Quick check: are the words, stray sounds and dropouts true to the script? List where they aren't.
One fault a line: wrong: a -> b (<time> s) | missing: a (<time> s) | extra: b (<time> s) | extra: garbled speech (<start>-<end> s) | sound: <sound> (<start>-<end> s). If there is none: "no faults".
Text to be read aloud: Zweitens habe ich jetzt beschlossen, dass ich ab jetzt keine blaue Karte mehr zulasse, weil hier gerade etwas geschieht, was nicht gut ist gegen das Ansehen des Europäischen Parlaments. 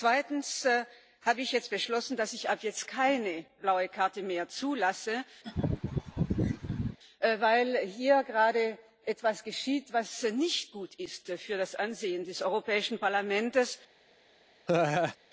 sound: laugh (5.4-7.0 s)
wrong: gegen -> für (11.3 s)
sound: laugh (14.7-15.2 s)